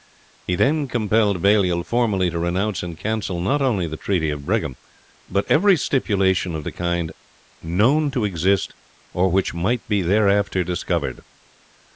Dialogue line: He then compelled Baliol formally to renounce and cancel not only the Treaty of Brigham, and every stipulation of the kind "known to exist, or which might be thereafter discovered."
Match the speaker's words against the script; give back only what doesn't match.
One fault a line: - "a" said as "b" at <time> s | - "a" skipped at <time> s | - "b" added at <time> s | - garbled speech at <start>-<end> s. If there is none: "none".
- "and" said as "but" at 5.3 s